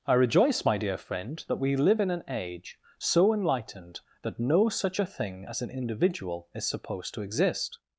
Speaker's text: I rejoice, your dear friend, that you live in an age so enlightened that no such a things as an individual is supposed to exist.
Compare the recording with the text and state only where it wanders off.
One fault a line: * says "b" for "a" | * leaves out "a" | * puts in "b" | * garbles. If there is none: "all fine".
* says "my" for "your"
* says "we" for "you"
* says "thing" for "things"